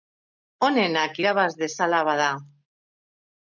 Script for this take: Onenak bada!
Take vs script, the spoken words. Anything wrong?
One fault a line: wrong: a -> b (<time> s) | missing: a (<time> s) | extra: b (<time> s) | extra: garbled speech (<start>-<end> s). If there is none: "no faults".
extra: irabaz dezala (1.2 s)